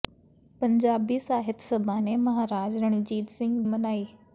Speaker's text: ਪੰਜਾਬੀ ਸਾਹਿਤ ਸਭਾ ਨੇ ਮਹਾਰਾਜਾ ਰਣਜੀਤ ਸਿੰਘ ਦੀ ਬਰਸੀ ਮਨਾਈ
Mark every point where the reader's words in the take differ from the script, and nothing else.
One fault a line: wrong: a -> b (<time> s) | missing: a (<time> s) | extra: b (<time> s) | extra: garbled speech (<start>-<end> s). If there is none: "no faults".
missing: ਦੀ ਬਰਸੀ (3.6 s)